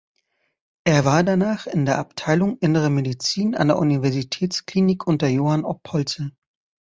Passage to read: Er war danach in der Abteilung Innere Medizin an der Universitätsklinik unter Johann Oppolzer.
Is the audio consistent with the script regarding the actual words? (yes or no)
yes